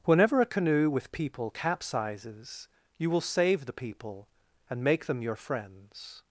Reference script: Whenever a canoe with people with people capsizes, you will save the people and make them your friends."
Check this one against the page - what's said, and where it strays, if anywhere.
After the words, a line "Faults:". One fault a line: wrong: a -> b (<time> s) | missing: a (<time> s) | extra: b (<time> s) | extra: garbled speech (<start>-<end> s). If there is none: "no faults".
Whenever a canoe with people capsizes, you will save the people and make them your friends."
Faults:
missing: with people (1.5 s)